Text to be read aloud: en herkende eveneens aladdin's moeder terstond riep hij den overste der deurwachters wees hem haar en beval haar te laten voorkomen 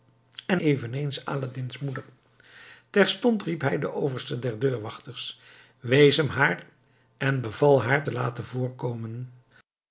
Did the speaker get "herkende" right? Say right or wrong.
wrong